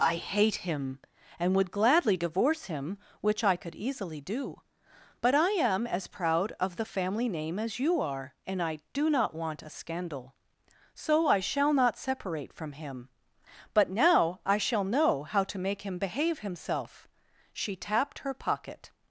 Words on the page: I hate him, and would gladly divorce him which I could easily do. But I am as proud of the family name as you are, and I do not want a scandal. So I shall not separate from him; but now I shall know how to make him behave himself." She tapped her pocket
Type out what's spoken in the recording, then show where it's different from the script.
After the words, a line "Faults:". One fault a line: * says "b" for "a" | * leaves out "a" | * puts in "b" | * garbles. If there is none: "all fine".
I hate him, and would gladly divorce him which I could easily do. But I am as proud of the family name as you are, and I do not want a scandal. So I shall not separate from him; but now I shall know how to make him behave himself." She tapped her pocket
Faults:
all fine